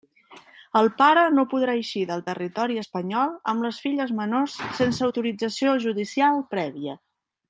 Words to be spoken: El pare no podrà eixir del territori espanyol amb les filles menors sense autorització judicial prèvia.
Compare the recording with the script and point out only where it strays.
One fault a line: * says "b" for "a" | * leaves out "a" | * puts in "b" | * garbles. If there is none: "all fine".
all fine